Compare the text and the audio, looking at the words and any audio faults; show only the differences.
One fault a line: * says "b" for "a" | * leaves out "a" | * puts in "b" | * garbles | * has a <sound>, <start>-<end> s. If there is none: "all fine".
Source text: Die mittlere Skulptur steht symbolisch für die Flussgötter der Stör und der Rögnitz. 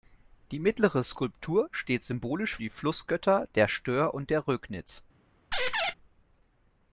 * leaves out "für"
* has a squeak, 5.5-5.9 s